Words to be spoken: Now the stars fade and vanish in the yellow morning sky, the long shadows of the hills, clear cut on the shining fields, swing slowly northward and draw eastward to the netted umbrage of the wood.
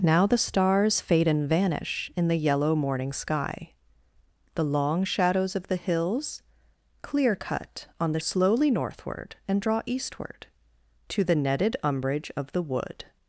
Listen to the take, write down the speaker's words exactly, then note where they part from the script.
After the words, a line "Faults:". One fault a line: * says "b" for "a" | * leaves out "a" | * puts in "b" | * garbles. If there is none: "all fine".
Now the stars fade and vanish in the yellow morning sky, the long shadows of the hills, clear cut on the slowly northward and draw eastward to the netted umbrage of the wood.
Faults:
* leaves out "shining fields swing"